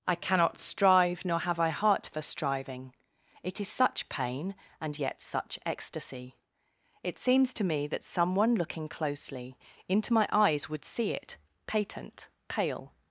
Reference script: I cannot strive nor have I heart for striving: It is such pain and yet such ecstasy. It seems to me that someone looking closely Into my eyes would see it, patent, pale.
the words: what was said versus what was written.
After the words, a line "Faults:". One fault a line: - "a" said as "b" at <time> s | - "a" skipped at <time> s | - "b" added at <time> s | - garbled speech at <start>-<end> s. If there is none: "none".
I cannot strive nor have I heart for striving: It is such pain and yet such ecstasy. It seems to me that someone looking closely Into my eyes would see it, patent, pale.
Faults:
none